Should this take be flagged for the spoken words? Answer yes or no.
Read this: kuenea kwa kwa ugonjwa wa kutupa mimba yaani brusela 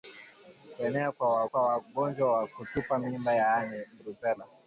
no